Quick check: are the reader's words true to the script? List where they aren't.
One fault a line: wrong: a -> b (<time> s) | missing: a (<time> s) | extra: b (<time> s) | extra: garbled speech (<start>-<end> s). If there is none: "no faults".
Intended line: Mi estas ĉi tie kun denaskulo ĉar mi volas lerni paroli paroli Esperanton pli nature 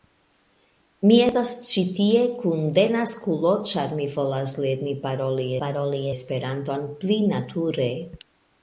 no faults